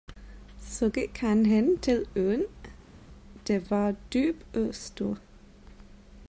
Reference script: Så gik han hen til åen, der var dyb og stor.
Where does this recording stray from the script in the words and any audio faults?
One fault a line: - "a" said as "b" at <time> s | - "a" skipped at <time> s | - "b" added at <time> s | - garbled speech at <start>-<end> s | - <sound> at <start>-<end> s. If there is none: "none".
none